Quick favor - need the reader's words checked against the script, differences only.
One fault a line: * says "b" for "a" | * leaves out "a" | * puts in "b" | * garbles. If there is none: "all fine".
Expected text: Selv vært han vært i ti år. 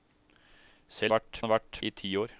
all fine